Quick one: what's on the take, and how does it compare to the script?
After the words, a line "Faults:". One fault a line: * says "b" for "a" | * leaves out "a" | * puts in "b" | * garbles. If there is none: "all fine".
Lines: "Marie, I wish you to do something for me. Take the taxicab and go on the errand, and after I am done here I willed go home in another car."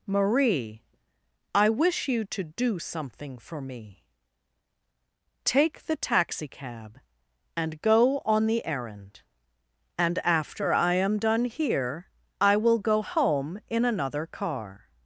"Marie, I wish you to do something for me. Take the taxicab and go on the errand, and after I am done here I will go home in another car."
Faults:
* says "will" for "willed"